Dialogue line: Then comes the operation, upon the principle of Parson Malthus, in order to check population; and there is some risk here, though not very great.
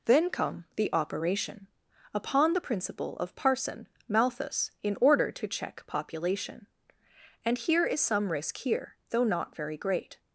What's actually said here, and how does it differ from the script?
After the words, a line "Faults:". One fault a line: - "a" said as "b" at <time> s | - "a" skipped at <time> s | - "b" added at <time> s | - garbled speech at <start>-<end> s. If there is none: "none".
Then come the operation, upon the principle of Parson Malthus, in order to check population; and here is some risk here, though not very great.
Faults:
- "comes" said as "come" at 0.3 s
- "there" said as "here" at 7.6 s